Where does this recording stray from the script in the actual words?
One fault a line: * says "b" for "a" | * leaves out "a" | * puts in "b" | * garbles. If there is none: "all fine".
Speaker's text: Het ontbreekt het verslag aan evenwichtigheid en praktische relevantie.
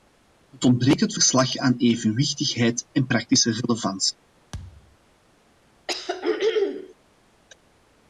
all fine